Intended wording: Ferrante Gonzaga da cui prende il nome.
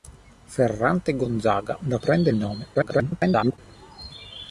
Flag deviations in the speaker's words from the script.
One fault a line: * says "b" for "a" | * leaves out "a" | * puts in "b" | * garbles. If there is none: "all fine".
* leaves out "cui"
* garbles